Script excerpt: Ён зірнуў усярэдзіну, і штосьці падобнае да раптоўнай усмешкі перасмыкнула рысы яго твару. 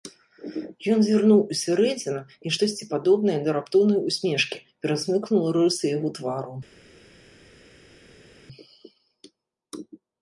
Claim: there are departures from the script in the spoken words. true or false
false